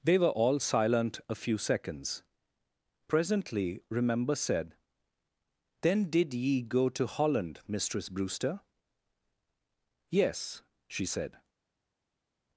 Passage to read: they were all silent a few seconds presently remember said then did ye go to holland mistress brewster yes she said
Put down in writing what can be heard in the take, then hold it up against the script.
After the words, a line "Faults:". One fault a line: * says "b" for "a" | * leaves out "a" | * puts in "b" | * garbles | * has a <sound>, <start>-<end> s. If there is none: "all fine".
they were all silent a few seconds presently remember said then did ye go to holland mistress brewster yes she said
Faults:
all fine